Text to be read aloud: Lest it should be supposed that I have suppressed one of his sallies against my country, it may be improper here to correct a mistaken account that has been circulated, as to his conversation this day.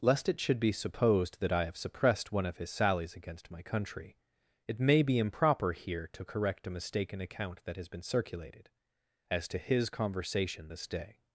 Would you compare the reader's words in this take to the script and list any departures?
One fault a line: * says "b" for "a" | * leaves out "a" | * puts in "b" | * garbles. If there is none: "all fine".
all fine